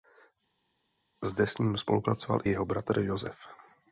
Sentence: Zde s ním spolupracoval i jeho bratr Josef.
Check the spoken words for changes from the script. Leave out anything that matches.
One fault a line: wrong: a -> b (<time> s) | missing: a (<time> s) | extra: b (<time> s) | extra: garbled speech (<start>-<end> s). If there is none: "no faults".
no faults